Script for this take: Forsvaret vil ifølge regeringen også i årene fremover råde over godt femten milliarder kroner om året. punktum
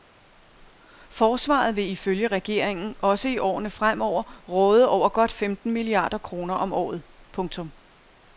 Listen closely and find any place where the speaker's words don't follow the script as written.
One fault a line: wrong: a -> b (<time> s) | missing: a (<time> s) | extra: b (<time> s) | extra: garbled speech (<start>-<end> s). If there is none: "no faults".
no faults